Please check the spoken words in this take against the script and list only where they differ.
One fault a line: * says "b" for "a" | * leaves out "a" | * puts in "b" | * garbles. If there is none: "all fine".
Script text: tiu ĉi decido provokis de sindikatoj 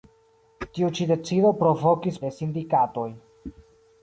all fine